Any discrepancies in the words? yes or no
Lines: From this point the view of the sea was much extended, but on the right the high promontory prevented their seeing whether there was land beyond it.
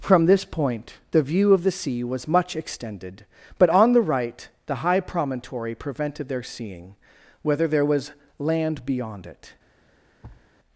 no